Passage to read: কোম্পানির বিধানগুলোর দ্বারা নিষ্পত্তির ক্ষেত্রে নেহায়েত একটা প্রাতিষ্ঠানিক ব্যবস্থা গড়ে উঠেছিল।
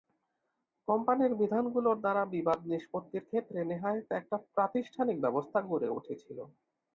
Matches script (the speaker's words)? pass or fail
fail